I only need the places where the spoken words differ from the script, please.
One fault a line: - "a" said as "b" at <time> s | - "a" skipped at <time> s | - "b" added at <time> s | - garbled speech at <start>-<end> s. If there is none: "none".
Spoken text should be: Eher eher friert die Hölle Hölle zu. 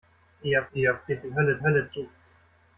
none